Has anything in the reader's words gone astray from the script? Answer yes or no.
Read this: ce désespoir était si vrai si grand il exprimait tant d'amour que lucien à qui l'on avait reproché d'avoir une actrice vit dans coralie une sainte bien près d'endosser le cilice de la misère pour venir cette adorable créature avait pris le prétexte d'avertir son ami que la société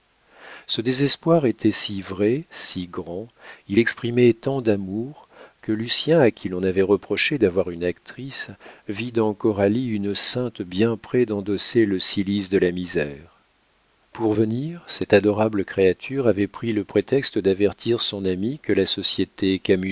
no